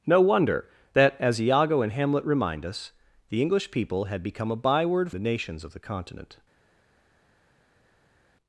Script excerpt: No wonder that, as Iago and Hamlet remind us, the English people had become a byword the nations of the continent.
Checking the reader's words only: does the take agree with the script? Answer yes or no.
yes